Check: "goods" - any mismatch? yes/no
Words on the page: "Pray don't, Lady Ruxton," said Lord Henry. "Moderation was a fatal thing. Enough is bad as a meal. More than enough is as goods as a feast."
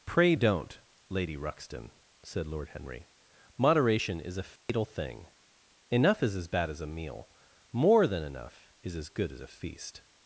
yes